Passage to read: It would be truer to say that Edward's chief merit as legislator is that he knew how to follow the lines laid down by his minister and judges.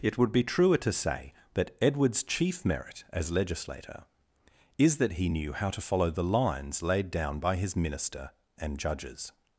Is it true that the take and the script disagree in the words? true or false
false